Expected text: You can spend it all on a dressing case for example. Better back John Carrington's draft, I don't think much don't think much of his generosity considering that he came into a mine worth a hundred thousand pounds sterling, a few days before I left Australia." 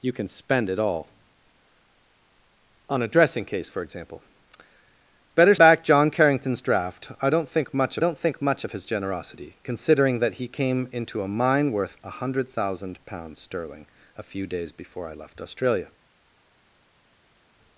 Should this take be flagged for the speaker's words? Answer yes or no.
no